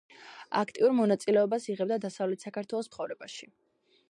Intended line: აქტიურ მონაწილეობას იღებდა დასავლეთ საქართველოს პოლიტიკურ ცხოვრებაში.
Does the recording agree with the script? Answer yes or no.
no